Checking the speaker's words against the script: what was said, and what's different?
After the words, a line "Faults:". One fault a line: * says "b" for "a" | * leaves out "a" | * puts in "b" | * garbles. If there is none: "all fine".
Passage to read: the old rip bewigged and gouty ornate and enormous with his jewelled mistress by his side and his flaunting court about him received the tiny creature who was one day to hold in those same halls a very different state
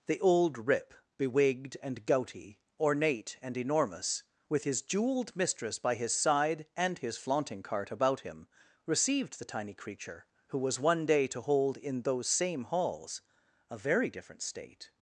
the old rip bewigged and gouty ornate and enormous with his jewelled mistress by his side and his flaunting cart about him received the tiny creature who was one day to hold in those same halls a very different state
Faults:
* says "cart" for "court"